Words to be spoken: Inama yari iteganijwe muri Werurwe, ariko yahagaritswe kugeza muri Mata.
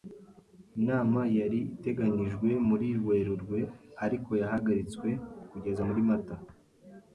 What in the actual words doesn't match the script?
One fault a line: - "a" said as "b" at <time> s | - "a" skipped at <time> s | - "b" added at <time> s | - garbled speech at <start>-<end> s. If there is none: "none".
none